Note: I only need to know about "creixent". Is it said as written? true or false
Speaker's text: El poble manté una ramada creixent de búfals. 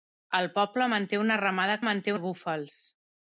false